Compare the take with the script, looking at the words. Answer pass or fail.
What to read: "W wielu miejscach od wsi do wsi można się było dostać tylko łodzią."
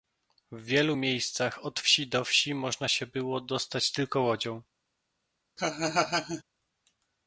pass